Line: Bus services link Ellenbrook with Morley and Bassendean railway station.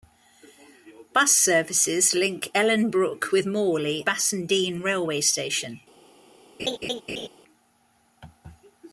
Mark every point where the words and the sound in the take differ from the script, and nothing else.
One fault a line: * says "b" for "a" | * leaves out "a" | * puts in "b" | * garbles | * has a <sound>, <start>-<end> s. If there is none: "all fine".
* leaves out "and"
* has a laugh, 6.6-7.3 s